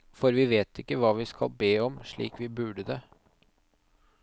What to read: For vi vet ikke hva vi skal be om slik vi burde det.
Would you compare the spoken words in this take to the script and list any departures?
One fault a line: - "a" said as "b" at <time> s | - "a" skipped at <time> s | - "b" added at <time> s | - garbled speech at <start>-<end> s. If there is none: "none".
none